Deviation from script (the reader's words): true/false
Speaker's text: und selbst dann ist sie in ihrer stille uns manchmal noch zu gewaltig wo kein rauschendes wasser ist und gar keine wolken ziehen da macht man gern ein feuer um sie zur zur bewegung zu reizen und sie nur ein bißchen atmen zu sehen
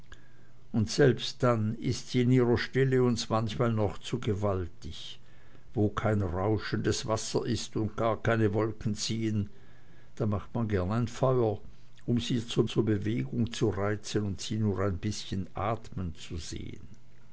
false